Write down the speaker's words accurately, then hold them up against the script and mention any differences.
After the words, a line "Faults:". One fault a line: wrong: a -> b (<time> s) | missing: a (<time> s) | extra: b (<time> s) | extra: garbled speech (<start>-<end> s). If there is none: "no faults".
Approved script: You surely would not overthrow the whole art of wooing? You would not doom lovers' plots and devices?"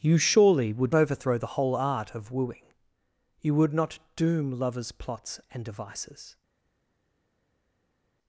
You surely would overthrow the whole art of wooing? You would not doom lovers' plots and devices?"
Faults:
missing: not (0.9 s)